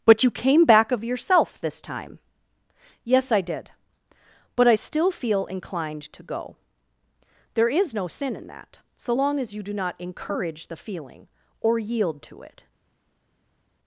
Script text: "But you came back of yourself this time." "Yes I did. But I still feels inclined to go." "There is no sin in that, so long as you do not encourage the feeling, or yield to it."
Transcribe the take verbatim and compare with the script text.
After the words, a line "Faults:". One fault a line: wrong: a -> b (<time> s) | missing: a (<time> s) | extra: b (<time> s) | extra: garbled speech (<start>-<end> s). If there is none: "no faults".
"But you came back of yourself this time." "Yes I did. But I still feel inclined to go." "There is no sin in that, so long as you do not encourage the feeling, or yield to it."
Faults:
wrong: feels -> feel (5.1 s)